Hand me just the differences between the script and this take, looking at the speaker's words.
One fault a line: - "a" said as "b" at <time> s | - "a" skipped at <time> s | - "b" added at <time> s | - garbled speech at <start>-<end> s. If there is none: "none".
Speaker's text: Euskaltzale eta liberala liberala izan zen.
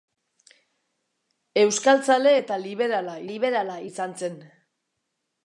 none